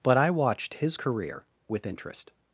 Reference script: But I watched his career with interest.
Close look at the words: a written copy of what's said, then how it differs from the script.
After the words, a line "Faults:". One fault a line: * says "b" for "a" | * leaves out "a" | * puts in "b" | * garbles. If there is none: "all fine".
But I watched his career with interest.
Faults:
all fine